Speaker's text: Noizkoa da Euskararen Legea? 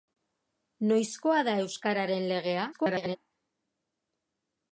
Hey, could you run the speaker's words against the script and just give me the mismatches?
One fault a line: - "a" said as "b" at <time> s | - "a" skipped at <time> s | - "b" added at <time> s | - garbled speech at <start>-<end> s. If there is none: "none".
- garbled speech at 2.7-3.2 s